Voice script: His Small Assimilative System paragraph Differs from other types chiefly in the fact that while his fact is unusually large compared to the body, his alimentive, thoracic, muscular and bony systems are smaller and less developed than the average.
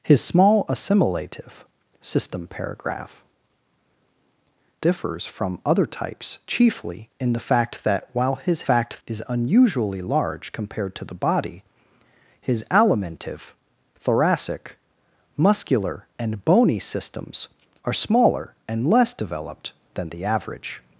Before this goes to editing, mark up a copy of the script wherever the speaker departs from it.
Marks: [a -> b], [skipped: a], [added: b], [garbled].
His Small Assimilative System paragraph Differs from other types chiefly in the fact that while his fact is unusually large compared to the body, his alimentive, thoracic, muscular and bony systems are smaller and less developed than the average.